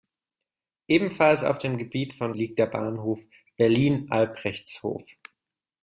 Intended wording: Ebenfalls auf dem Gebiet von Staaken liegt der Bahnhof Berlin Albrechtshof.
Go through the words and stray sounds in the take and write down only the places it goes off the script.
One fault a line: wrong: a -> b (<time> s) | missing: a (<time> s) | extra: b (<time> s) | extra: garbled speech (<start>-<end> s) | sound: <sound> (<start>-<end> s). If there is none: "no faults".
missing: Staaken (2.3 s)